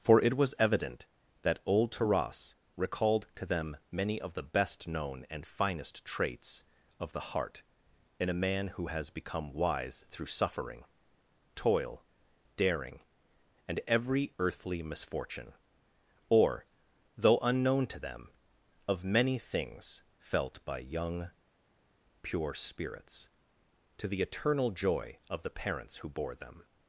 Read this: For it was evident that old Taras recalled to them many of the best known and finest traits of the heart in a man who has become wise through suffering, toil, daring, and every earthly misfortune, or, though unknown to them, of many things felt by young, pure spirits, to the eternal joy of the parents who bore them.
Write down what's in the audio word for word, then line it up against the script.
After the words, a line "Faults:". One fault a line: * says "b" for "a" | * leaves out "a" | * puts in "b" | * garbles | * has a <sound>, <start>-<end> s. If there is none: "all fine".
For it was evident that old Taras recalled to them many of the best known and finest traits of the heart in a man who has become wise through suffering, toil, daring, and every earthly misfortune, or, though unknown to them, of many things felt by young, pure spirits, to the eternal joy of the parents who bore them.
Faults:
all fine